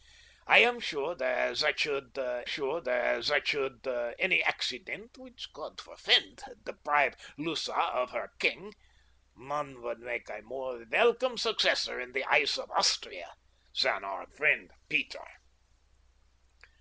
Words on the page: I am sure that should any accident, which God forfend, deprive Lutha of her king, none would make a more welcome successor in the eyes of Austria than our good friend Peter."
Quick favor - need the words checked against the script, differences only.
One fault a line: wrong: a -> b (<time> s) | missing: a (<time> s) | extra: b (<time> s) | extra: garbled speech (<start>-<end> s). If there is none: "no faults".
extra: sure that should (2.4 s)
missing: good (14.3 s)